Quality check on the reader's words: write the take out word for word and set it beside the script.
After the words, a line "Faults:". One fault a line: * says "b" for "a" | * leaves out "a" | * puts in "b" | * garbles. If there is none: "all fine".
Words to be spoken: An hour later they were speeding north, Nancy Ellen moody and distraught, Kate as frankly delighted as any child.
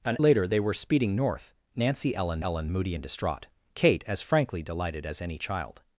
An later they were speeding north, Nancy Ellen Ellen moody and distraught, Kate as frankly delighted as any child.
Faults:
* leaves out "hour"
* puts in "Ellen"